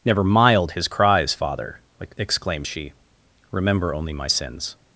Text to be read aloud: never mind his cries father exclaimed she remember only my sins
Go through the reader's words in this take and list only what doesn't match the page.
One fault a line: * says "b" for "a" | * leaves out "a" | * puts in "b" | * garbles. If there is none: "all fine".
* says "mild" for "mind"